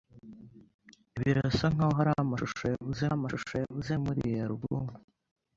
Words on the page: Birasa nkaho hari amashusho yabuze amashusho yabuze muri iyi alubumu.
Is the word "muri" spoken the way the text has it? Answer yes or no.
yes